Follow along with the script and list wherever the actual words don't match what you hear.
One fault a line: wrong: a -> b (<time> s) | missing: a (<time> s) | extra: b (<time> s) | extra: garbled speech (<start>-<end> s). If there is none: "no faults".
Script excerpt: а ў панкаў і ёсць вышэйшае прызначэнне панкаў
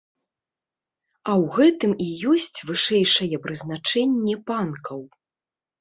wrong: панкаў -> гэтым (1.6 s)